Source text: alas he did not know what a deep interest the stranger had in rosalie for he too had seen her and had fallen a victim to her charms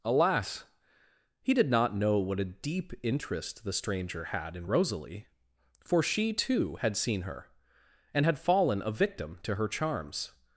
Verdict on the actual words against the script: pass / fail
fail